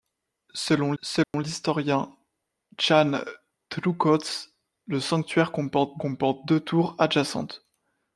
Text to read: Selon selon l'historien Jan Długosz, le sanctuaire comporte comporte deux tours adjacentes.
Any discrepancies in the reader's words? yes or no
no